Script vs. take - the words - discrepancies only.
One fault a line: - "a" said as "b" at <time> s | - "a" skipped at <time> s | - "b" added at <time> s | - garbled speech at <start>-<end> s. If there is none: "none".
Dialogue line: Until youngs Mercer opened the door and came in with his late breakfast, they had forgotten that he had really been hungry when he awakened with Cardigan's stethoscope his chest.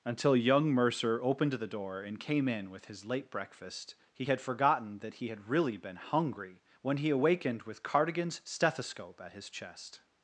- "youngs" said as "young" at 0.3 s
- "they" said as "he" at 4.1 s
- "at" added at 9.2 s